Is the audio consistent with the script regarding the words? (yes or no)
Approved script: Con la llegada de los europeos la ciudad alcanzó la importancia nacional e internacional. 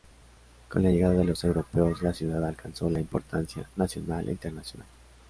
yes